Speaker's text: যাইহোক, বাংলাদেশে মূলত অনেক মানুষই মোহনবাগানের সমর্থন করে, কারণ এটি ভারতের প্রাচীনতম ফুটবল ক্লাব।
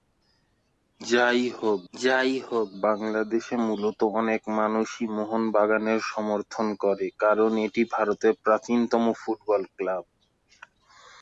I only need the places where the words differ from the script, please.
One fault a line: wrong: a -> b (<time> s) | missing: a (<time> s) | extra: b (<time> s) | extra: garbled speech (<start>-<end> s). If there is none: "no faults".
extra: যাইহোক (1.9 s)